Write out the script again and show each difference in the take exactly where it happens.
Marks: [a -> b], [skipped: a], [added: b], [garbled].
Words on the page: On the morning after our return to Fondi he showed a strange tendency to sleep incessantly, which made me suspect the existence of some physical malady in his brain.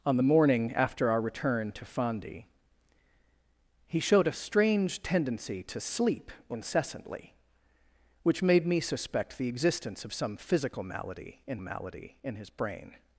On the morning after our return to Fondi he showed a strange tendency to sleep incessantly, which made me suspect the existence of some physical malady in [added: malady in] his brain.